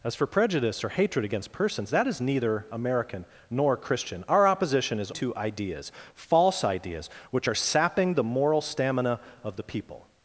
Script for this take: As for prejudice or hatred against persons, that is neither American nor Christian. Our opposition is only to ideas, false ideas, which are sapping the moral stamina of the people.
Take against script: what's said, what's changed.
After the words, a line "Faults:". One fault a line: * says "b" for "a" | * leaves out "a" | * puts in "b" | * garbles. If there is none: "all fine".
As for prejudice or hatred against persons, that is neither American nor Christian. Our opposition is to ideas, false ideas, which are sapping the moral stamina of the people.
Faults:
* leaves out "only"